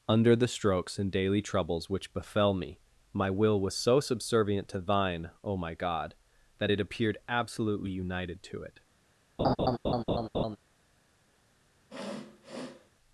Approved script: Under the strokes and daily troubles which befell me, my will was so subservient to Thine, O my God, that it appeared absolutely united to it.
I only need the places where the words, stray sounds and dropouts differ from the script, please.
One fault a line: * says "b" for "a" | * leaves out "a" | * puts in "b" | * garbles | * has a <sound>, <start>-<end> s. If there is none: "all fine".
* has a laugh, 9.4-10.6 s
* has a sniff, 11.9-12.9 s